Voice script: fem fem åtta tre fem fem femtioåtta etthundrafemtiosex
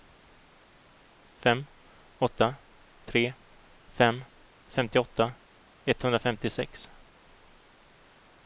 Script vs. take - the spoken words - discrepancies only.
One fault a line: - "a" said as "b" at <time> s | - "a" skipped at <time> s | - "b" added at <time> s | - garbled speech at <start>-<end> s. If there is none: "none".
- "fem" skipped at 1.6 s
- "fem" skipped at 4.2 s